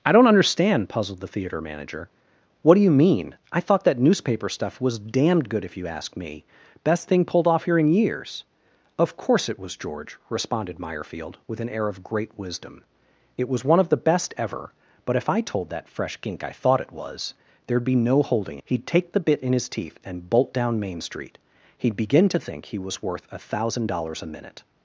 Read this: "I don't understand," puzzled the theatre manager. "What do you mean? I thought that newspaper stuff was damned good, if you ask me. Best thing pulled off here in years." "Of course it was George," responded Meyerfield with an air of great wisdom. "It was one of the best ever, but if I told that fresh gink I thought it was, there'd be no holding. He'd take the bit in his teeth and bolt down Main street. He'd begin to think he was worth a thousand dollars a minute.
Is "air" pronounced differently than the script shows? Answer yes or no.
no